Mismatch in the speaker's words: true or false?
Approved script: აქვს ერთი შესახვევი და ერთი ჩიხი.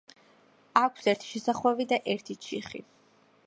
false